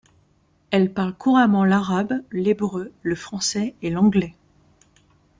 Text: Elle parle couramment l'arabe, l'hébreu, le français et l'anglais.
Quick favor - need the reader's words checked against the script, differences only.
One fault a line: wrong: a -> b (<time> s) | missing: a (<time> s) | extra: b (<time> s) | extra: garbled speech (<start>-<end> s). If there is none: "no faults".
no faults